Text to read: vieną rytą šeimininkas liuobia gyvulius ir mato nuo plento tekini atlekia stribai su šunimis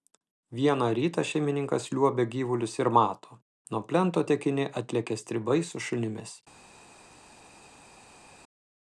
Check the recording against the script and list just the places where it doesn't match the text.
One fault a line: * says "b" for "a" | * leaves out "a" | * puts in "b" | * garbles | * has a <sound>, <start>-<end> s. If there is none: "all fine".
all fine